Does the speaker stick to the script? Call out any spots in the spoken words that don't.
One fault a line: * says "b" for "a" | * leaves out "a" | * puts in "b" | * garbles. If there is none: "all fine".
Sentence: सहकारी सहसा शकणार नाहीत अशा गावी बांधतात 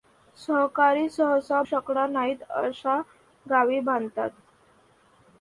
all fine